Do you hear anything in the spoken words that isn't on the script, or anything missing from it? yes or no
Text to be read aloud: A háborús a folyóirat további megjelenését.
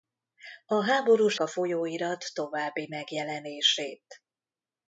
no